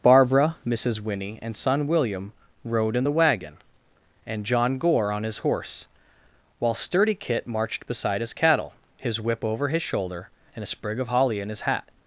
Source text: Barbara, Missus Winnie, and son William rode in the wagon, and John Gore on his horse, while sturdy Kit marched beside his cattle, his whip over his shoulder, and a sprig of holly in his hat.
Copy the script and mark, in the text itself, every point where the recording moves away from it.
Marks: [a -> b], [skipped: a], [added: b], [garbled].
Barbara, Missus Winnie, and son William rode in the wagon, and John Gore on his horse, while sturdy Kit marched beside his cattle, his whip over his shoulder, and a sprig of holly in his hat.